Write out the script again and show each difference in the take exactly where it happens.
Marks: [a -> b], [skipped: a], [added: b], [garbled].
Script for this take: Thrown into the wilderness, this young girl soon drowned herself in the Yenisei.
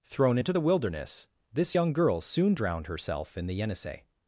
Thrown into the wilderness, this young girl soon drowned herself in the Yenisei.